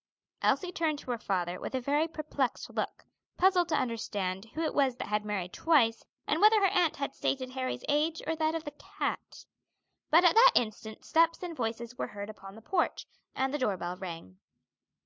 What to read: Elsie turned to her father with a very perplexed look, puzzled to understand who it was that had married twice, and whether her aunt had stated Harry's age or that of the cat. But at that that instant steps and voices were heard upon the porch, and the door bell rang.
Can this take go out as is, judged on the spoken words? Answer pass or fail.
fail